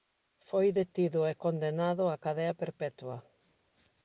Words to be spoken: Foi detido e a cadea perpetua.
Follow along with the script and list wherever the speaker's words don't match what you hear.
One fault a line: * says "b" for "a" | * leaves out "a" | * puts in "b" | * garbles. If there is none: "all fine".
* puts in "condenado"